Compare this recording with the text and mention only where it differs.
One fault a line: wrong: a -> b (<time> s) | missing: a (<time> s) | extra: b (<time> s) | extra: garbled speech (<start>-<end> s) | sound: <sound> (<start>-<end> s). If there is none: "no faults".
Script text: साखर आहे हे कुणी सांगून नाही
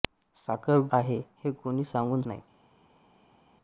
no faults